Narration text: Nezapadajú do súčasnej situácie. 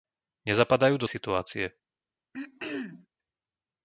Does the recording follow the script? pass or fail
fail